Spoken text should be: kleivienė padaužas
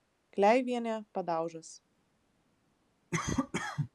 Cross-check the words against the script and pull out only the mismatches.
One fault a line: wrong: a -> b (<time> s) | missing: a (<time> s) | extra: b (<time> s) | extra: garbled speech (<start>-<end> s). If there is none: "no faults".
no faults